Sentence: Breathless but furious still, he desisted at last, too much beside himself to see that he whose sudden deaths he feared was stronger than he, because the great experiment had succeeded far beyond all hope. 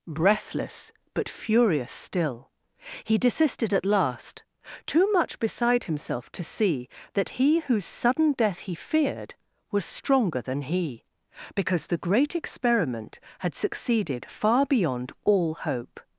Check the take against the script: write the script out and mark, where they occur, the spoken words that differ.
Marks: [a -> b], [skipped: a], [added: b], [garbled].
Breathless but furious still, he desisted at last, too much beside himself to see that he whose sudden [deaths -> death] he feared was stronger than he, because the great experiment had succeeded far beyond all hope.